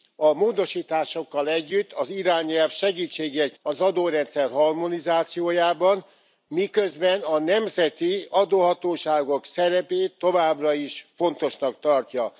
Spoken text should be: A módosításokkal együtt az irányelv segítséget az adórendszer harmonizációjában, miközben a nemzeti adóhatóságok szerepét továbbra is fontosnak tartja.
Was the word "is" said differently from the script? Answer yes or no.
no